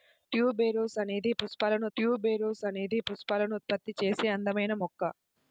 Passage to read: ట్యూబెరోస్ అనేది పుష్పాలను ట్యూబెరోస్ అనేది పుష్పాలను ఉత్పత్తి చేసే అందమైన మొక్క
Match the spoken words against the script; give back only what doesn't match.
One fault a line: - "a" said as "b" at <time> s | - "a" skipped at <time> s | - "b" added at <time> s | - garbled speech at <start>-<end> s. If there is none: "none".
none